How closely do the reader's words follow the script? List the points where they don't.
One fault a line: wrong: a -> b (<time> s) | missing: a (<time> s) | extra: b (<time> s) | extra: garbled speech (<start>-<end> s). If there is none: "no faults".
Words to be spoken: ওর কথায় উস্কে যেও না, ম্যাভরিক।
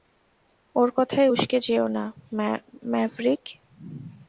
no faults